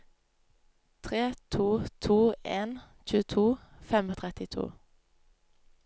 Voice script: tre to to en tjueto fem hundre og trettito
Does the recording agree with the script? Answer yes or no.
no